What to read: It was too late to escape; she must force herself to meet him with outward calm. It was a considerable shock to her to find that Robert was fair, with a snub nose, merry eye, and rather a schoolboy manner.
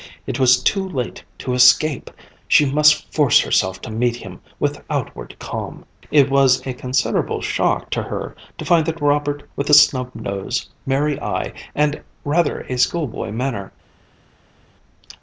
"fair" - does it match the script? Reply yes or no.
no